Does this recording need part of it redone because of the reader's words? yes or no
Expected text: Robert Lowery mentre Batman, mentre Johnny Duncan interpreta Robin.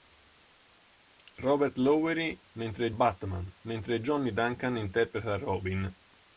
no